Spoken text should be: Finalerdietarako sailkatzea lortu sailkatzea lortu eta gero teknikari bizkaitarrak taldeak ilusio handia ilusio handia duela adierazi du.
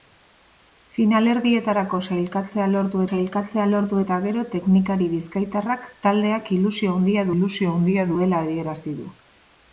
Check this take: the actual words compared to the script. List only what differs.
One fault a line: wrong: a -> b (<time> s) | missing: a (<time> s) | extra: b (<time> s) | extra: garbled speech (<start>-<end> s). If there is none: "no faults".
no faults